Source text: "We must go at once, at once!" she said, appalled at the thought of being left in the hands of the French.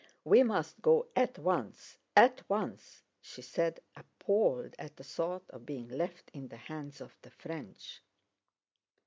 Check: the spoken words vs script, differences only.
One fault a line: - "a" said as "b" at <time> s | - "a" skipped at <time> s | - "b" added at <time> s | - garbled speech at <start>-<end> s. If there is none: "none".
none